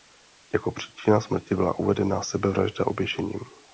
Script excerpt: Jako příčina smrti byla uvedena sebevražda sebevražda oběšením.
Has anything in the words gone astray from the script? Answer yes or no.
yes